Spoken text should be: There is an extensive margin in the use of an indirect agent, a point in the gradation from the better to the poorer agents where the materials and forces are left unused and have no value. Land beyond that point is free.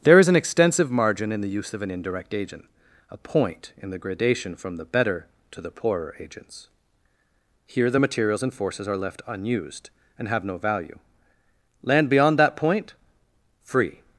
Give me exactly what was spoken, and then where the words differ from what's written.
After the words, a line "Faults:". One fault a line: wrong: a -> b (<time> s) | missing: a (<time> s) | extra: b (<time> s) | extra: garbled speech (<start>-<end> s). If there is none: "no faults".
There is an extensive margin in the use of an indirect agent, a point in the gradation from the better to the poorer agents here the materials and forces are left unused and have no value. Land beyond that point free.
Faults:
wrong: where -> here (7.7 s)
missing: is (13.0 s)